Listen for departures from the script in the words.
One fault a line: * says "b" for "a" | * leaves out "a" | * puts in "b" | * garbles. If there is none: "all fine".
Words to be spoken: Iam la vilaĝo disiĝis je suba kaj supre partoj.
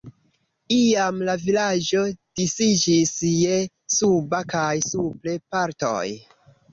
all fine